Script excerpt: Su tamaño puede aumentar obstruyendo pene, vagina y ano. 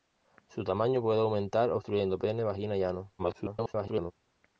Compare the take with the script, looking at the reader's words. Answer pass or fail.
fail